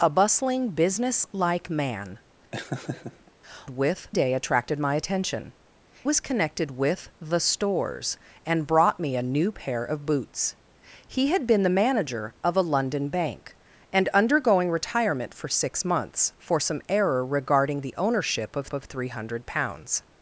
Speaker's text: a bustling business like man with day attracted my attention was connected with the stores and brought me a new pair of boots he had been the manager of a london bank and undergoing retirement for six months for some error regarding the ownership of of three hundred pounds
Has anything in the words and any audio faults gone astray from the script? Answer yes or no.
yes